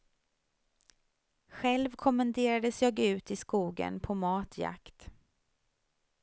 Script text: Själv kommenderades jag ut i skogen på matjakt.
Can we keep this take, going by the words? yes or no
yes